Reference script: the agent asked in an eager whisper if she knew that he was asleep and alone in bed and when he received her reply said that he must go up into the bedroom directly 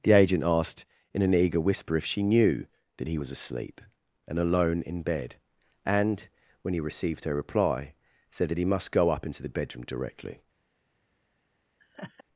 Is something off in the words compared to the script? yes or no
no